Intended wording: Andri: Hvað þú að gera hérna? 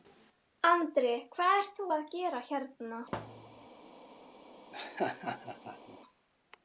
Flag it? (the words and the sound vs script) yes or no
yes